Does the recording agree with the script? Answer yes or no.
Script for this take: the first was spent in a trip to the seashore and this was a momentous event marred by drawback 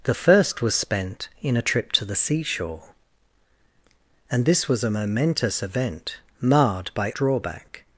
yes